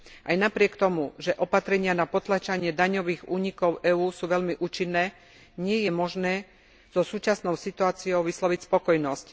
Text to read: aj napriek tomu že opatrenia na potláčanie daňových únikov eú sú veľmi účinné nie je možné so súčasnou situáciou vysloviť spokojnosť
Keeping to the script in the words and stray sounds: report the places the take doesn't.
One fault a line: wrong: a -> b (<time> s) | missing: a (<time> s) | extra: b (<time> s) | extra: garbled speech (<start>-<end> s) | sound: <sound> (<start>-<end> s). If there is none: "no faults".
no faults